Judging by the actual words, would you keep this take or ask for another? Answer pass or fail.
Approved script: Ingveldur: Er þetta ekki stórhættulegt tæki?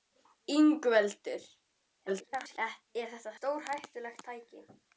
fail